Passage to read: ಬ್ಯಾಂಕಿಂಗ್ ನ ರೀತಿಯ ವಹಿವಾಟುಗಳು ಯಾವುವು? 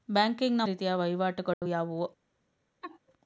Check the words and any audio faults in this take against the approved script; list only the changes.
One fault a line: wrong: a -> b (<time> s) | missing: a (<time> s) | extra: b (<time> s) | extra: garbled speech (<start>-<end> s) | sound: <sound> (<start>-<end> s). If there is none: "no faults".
sound: dropout (1.5-1.6 s)
sound: laugh (2.8-3.0 s)